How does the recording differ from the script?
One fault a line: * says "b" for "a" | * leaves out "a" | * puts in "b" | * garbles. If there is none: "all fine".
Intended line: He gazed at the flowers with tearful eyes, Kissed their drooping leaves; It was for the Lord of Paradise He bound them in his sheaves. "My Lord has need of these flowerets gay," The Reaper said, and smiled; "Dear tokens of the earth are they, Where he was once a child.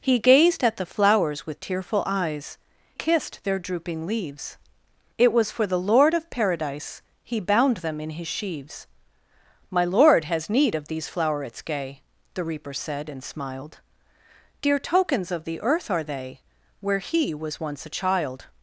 all fine